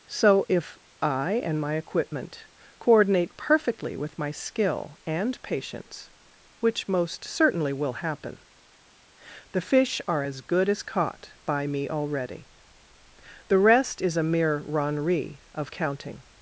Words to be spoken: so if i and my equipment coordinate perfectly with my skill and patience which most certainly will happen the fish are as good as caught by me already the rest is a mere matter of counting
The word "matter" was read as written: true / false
false